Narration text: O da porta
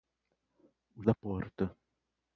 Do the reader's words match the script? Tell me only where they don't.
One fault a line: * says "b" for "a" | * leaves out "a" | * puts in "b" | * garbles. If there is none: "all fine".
all fine